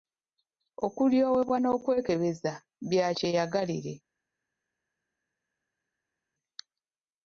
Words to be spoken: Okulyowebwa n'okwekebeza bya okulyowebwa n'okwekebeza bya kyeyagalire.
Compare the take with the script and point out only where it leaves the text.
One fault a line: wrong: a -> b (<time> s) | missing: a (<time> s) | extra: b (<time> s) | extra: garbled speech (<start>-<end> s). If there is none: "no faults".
missing: okulyowebwa n'okwekebeza bya (3.1 s)